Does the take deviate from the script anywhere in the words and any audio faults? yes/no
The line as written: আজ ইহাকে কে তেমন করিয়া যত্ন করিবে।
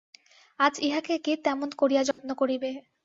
yes